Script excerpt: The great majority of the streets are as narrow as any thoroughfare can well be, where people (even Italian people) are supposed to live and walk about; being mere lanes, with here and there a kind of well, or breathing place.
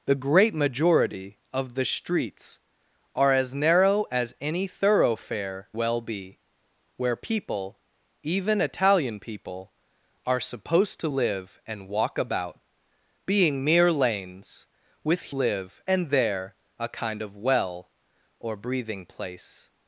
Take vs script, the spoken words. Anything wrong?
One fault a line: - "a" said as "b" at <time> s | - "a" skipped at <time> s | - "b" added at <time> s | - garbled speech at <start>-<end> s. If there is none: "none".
- "can" skipped at 5.7 s
- "here" said as "live" at 15.3 s